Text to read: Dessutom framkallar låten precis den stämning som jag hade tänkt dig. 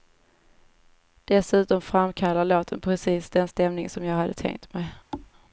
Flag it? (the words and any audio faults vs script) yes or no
yes